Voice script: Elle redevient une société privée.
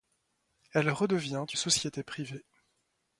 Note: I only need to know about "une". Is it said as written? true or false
false